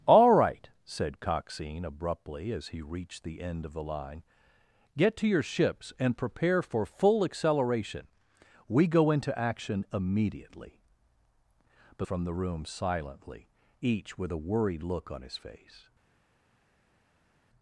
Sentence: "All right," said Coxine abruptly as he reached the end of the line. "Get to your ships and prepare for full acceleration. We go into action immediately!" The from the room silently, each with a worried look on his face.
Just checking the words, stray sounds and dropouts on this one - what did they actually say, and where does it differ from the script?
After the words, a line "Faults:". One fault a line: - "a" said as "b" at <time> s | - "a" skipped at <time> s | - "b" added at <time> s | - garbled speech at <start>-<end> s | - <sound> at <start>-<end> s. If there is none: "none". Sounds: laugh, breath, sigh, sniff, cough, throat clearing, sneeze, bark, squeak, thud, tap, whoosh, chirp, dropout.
"All right," said Coxine abruptly as he reached the end of the line. "Get to your ships and prepare for full acceleration. We go into action immediately!" The from the room silently, each with a worried look on his face.
Faults:
none